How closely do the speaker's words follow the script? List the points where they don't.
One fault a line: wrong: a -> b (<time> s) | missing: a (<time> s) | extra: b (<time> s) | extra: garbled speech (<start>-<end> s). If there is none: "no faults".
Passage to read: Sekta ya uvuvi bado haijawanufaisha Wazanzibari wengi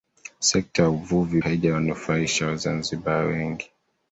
missing: bado (1.4 s)